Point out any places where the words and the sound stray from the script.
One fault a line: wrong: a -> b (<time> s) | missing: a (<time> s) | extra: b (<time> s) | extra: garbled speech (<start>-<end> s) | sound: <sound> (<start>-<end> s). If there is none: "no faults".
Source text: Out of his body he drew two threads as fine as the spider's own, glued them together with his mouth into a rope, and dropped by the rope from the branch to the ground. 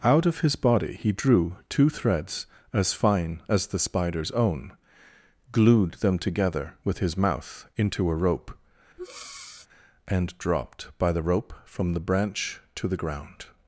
sound: breath (9.0-9.7 s)